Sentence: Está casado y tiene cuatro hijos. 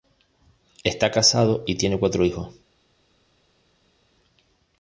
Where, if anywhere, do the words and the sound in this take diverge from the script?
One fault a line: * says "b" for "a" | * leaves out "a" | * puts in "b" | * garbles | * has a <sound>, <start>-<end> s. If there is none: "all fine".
all fine